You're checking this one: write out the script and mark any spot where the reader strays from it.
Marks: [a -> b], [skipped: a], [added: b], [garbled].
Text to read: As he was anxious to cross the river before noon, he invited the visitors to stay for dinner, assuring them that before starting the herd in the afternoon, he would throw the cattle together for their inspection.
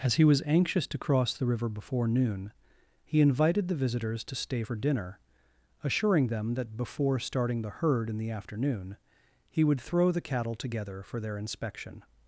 As he was anxious to cross the river before noon, he invited the visitors to stay for dinner, assuring them that before starting the herd in the afternoon, he would throw the cattle together for their inspection.